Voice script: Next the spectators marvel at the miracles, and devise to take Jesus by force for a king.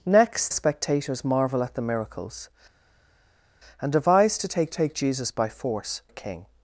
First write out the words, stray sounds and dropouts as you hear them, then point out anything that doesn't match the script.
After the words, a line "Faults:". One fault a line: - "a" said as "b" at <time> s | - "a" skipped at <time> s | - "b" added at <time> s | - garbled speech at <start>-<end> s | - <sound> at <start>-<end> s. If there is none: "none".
Next spectators marvel at the miracles, and devise to take take Jesus by force a king.
Faults:
- "the" skipped at 0.5 s
- "take" added at 4.7 s
- "for" skipped at 6.0 s